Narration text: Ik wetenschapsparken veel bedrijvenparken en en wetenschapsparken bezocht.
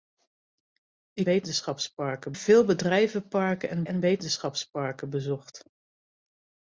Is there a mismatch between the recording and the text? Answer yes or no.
no